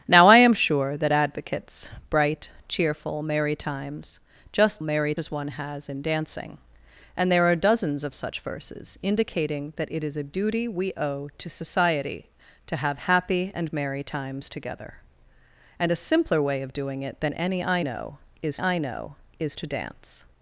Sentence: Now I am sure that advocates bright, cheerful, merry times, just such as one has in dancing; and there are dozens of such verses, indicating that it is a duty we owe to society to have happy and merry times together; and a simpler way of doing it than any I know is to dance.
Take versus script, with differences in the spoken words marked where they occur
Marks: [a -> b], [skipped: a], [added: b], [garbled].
Now I am sure that advocates bright, cheerful, merry times, just [such -> merry] as one has in dancing; and there are dozens of such verses, indicating that it is a duty we owe to society to have happy and merry times together; and a simpler way of doing it than any I know is [added: I know is] to dance.